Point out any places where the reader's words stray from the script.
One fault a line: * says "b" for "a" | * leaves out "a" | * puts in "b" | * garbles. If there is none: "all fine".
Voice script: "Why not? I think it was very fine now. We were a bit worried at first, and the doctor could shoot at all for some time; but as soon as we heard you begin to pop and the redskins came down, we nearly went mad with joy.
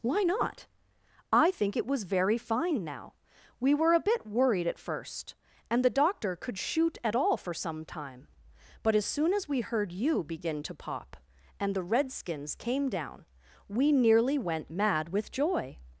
all fine